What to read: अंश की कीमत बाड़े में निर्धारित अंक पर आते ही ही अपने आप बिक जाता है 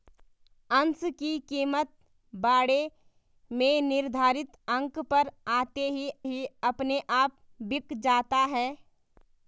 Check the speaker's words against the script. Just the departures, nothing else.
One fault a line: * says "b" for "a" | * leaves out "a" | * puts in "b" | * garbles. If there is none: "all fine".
all fine